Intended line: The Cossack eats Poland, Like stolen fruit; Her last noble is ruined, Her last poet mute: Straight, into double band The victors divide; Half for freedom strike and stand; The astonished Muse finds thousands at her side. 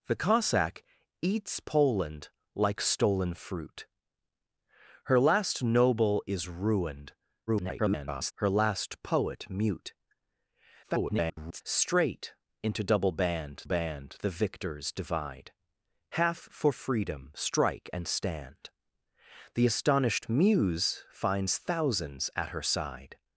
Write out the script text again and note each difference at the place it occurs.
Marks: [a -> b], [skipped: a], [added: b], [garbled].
The Cossack eats Poland, Like stolen fruit; Her last noble is ruined, [garbled] Her last poet mute: [garbled] Straight, into double band [added: band] The victors divide; Half for freedom strike and stand; The astonished Muse finds thousands at her side.